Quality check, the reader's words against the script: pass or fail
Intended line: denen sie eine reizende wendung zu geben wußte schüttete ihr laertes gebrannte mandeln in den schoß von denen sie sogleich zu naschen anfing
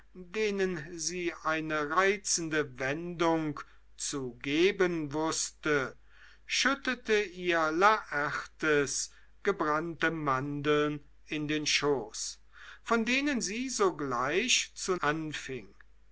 fail